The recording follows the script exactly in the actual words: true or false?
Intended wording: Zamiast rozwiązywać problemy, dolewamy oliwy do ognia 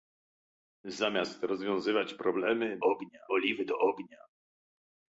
false